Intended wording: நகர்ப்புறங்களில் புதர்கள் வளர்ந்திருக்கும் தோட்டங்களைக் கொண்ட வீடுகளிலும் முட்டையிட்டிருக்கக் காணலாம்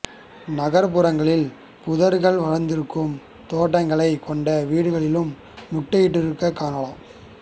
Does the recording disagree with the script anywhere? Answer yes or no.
no